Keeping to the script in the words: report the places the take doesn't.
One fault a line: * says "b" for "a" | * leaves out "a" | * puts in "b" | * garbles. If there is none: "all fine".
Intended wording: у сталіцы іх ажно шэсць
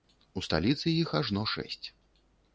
all fine